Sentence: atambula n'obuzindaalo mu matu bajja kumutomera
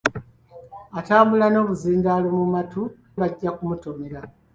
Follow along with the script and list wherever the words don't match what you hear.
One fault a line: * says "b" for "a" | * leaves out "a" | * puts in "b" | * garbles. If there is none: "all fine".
all fine